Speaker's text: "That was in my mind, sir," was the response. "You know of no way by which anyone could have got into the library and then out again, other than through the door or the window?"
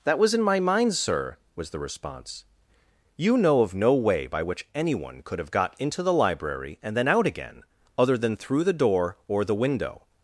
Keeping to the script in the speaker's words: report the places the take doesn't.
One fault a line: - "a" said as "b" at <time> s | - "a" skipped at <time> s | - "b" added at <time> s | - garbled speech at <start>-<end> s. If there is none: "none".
none